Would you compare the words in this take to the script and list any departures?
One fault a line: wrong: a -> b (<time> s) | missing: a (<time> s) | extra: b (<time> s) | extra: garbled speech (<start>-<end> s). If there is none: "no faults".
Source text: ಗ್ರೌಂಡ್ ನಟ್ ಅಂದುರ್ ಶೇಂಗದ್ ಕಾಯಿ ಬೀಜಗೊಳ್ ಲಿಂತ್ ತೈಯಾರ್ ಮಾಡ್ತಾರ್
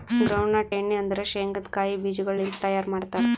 extra: ಎಣ್ಣಿ (0.7 s)